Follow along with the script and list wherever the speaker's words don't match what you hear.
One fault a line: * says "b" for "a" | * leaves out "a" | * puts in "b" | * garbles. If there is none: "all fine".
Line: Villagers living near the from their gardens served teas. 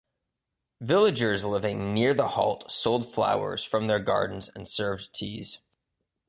* puts in "halt sold flowers"
* puts in "and"